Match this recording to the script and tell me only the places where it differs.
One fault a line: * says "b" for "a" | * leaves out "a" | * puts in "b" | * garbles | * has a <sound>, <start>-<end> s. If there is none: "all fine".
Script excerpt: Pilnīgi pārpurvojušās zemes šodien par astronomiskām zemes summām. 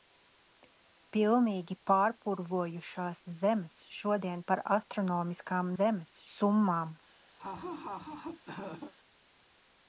* has a laugh, 7.4-8.9 s